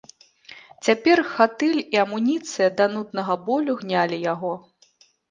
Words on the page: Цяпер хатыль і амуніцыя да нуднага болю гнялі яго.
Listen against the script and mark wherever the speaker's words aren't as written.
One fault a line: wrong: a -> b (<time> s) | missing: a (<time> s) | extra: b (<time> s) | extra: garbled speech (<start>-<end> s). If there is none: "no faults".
no faults